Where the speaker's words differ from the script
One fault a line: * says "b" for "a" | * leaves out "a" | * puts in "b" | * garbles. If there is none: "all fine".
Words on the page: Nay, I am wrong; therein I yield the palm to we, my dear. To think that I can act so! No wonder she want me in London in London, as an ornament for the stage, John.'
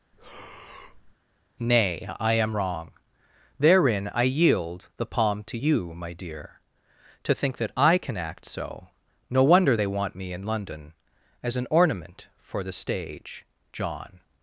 * says "you" for "we"
* says "they" for "she"
* leaves out "in London"